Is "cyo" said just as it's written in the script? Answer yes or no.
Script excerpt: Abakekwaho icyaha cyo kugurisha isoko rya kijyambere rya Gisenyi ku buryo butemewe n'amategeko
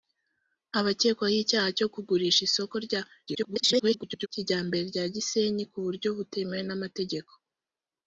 yes